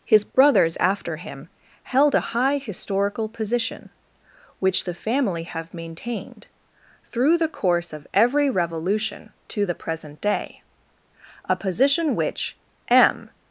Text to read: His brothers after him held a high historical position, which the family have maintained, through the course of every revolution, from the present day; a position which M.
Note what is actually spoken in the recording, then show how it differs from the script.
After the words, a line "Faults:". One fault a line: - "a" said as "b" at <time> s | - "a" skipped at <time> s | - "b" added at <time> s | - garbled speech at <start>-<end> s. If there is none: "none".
His brothers after him held a high historical position, which the family have maintained, through the course of every revolution, to the present day; a position which M.
Faults:
- "from" said as "to" at 9.5 s